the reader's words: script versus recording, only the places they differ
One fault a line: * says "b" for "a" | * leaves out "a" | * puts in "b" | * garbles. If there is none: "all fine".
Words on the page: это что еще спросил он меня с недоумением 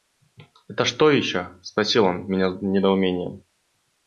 all fine